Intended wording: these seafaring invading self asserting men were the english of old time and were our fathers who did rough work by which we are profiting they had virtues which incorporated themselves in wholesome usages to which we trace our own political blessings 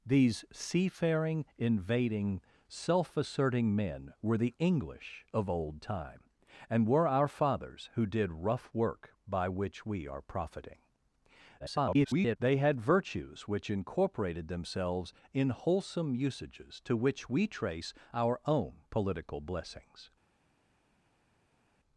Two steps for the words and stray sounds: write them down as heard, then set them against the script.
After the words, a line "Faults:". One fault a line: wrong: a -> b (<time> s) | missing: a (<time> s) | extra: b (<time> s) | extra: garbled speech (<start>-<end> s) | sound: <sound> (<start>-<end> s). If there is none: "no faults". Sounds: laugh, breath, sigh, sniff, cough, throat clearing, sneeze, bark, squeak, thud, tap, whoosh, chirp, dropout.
these seafaring invading self asserting men were the english of old time and were our fathers who did rough work by which we are profiting [garbled] they had virtues which incorporated themselves in wholesome usages to which we trace our own political blessings
Faults:
extra: garbled speech (11.6-12.4 s)